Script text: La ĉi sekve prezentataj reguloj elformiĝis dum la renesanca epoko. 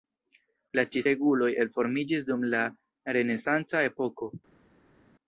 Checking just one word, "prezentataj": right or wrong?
wrong